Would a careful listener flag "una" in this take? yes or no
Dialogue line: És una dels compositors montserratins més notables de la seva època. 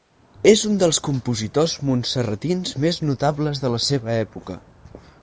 yes